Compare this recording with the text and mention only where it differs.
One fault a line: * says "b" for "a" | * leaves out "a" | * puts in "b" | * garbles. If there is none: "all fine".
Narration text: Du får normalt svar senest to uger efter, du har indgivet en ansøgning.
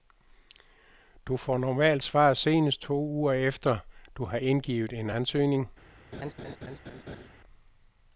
all fine